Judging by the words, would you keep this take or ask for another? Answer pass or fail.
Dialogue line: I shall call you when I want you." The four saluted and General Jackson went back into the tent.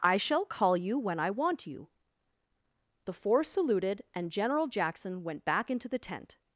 pass